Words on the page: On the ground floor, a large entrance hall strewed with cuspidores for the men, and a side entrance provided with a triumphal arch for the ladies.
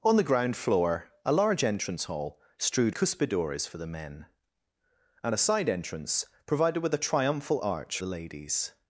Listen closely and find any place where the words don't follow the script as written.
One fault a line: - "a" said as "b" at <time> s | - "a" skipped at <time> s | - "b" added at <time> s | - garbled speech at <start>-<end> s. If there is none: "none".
- "with" skipped at 3.0 s
- "for" skipped at 8.0 s